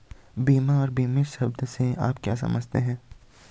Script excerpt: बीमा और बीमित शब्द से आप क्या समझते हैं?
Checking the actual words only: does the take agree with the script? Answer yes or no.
yes